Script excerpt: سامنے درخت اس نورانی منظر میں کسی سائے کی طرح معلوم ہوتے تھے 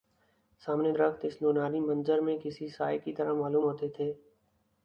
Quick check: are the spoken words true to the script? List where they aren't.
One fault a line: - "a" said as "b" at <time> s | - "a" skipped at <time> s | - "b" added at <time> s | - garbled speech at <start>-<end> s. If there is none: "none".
none